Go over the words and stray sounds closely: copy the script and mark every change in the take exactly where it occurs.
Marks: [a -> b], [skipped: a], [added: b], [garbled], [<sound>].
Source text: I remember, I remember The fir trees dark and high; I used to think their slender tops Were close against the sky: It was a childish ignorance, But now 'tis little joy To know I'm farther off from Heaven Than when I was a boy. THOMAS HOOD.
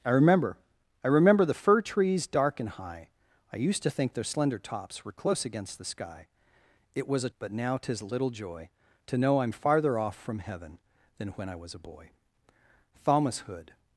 I remember, I remember The fir trees dark and high; I used to think their slender tops Were close against the sky: It was a [skipped: childish ignorance,] But now 'tis little joy To know I'm farther off from Heaven Than when I was a boy. THOMAS HOOD.